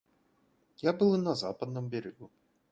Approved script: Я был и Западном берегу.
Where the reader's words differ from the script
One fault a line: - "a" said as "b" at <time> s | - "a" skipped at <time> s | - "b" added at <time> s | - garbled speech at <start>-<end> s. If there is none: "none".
- "на" added at 1.2 s